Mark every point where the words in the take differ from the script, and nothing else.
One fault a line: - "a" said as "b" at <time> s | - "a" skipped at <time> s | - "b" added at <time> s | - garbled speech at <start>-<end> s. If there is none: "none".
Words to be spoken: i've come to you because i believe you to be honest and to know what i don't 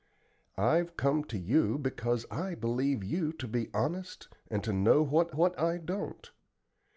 - "what" added at 5.3 s